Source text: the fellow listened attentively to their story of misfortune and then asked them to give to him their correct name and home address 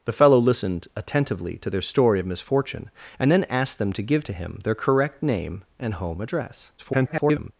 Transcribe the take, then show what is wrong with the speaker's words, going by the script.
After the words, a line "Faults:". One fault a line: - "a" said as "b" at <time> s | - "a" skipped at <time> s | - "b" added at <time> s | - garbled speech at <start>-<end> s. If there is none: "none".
the fellow listened attentively to their story of misfortune and then asked them to give to him their correct name and home address [garbled]
Faults:
- garbled speech at 6.8-7.5 s